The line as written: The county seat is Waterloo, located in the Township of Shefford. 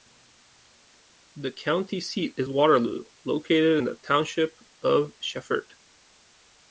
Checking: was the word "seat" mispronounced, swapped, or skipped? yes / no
no